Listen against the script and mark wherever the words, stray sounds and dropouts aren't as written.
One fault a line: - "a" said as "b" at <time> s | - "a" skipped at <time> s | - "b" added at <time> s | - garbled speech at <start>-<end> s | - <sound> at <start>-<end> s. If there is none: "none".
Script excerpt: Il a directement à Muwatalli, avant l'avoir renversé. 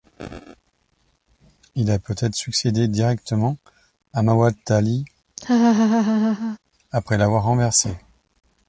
- "peut être succédé" added at 2.0 s
- laugh at 5.4-6.6 s
- "avant" said as "après" at 6.9 s